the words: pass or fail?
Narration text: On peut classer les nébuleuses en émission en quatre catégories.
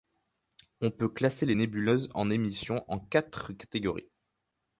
pass